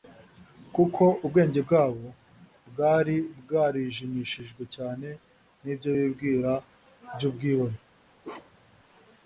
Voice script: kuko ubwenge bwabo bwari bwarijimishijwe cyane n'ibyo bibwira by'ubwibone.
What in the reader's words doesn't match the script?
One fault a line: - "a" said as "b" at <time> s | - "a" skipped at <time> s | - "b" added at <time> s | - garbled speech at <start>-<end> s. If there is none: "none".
none